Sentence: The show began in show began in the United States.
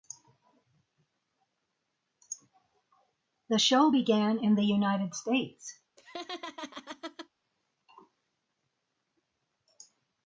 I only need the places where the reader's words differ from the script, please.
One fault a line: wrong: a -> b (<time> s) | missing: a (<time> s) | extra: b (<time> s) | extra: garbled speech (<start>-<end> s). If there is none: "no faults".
missing: show began in (4.6 s)